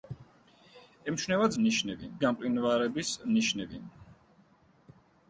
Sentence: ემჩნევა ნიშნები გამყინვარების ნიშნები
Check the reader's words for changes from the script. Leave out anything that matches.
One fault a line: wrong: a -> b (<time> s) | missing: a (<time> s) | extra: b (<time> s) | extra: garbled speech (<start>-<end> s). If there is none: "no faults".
no faults